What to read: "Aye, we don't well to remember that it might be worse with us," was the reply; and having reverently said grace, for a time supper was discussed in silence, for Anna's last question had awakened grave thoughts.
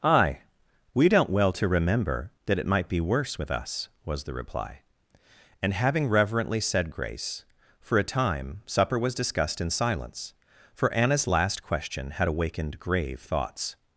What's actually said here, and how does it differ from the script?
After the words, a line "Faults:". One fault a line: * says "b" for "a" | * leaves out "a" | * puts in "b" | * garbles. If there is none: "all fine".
"Aye, we don't well to remember that it might be worse with us," was the reply; and having reverently said grace, for a time supper was discussed in silence, for Anna's last question had awakened grave thoughts.
Faults:
all fine